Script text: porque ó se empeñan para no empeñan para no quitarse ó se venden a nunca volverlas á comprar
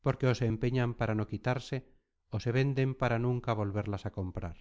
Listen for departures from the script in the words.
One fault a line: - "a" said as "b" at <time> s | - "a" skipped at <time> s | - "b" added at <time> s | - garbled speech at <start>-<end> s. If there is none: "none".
- "empeñan para no" skipped at 1.3 s
- "a" said as "para" at 3.0 s